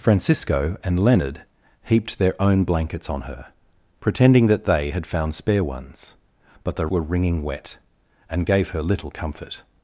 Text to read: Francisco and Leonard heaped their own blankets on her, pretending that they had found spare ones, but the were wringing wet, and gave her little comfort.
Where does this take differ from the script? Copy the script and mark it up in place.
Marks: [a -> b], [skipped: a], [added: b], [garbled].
Francisco and Leonard heaped their own blankets on her, pretending that they had found spare ones, but the were wringing wet, and gave her little comfort.